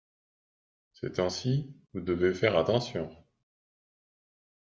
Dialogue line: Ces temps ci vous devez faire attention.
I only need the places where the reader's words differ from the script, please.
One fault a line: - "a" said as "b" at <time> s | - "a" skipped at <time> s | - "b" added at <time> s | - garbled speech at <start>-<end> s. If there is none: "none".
none